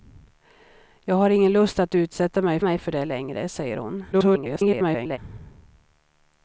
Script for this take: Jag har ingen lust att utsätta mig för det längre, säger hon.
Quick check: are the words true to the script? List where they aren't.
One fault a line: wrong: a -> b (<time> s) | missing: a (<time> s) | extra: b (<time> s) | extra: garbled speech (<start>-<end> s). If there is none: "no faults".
extra: mig (2.6 s)
extra: garbled speech (4.1-5.2 s)